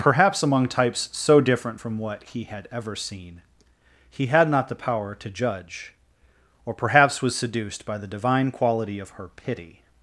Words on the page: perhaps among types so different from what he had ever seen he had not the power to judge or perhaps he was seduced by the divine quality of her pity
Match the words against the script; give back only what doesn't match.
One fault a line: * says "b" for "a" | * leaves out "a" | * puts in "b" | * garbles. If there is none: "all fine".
* leaves out "he"